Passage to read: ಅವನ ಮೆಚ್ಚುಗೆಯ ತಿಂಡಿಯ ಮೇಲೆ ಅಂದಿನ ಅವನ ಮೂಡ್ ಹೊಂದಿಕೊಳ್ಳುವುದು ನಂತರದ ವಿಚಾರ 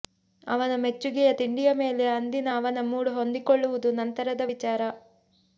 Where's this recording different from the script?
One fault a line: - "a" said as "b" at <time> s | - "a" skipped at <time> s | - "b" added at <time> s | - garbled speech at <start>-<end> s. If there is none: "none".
none